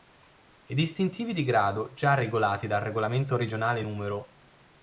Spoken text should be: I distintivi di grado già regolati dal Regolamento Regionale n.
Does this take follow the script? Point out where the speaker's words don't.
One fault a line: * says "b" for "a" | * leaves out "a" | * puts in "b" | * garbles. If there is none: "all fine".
all fine